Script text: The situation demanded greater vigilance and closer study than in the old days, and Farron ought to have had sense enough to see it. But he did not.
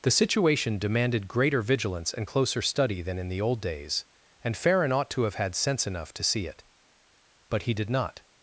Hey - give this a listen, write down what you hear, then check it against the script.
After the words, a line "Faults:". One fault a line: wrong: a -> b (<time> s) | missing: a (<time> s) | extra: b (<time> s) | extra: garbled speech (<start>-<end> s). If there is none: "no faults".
The situation demanded greater vigilance and closer study than in the old days, and Farron ought to have had sense enough to see it. But he did not.
Faults:
no faults